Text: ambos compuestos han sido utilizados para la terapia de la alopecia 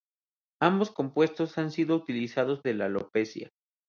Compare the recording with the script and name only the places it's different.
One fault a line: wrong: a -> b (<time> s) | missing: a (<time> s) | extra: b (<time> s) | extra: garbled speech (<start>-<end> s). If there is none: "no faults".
missing: para la terapia (2.6 s)